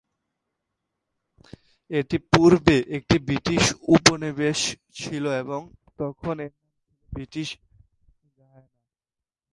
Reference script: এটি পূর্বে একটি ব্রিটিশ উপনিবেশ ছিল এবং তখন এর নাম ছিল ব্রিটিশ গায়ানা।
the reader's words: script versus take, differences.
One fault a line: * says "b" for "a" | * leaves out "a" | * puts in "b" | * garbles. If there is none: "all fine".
all fine